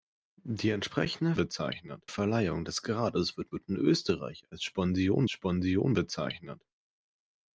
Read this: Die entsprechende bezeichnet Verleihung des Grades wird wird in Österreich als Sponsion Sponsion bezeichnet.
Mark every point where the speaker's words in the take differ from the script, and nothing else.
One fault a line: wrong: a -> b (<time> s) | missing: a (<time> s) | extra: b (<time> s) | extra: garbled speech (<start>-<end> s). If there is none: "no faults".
no faults